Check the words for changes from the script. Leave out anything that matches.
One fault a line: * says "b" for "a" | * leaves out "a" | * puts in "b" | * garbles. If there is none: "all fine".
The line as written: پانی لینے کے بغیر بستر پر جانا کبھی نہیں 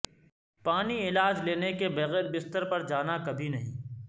* puts in "علاج"